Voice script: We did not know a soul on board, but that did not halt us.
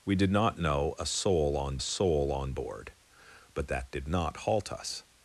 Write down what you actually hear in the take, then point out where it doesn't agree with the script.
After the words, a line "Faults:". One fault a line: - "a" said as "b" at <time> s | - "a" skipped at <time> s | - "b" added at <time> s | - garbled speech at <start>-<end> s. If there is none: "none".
We did not know a soul on soul on board, but that did not halt us.
Faults:
- "soul on" added at 1.8 s